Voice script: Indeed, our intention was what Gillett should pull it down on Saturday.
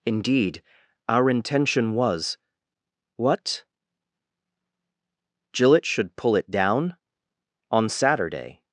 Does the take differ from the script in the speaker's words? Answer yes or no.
no